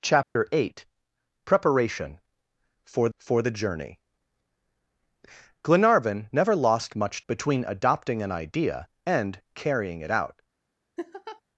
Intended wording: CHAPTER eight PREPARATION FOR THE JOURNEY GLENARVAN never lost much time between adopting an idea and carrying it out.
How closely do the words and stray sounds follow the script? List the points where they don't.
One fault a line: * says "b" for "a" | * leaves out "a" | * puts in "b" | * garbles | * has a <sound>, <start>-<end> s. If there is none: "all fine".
* has a dropout, 0.2-0.4 s
* puts in "FOR"
* leaves out "time"
* has a laugh, 11.0-11.4 s